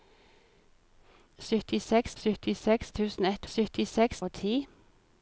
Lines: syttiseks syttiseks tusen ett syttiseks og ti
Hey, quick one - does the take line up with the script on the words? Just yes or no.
yes